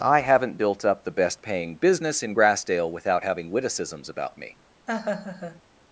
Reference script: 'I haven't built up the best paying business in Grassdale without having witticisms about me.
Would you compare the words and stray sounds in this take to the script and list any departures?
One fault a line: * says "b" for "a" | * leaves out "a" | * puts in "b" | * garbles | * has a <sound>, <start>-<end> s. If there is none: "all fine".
* has a laugh, 4.9-5.6 s